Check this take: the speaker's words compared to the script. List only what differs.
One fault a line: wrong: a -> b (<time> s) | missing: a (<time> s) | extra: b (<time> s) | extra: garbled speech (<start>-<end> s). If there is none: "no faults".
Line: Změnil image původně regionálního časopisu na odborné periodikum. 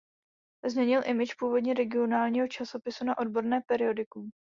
no faults